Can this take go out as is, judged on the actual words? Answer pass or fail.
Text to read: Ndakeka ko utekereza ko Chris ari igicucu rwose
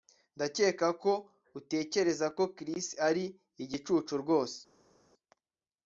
pass